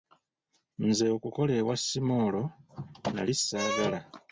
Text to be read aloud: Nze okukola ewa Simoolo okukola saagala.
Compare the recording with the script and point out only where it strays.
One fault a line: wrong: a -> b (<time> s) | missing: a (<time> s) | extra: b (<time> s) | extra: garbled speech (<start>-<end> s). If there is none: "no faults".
wrong: okukola -> nali (3.1 s)